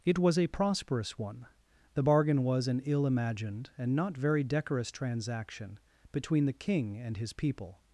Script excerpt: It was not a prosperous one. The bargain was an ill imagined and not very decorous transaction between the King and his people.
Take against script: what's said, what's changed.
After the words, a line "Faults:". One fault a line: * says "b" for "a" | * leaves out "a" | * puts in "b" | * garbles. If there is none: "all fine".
It was a prosperous one. The bargain was an ill imagined and not very decorous transaction between the King and his people.
Faults:
* leaves out "not"